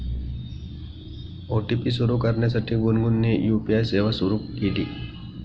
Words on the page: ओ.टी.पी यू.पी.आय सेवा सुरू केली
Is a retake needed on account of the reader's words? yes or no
yes